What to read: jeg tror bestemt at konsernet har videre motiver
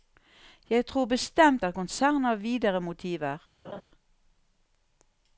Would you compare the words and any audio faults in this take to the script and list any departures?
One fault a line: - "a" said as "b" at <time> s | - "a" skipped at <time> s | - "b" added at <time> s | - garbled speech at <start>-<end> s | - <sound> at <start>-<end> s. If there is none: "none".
- laugh at 3.6-3.8 s